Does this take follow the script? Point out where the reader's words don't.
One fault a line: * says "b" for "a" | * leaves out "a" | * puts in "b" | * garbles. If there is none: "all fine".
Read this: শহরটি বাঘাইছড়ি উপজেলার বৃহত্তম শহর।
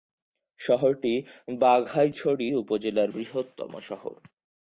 all fine